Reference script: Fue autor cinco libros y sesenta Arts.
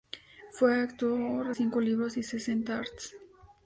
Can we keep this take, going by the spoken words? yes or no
yes